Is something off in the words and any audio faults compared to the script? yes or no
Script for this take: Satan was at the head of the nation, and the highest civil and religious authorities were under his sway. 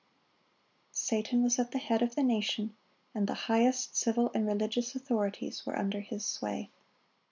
no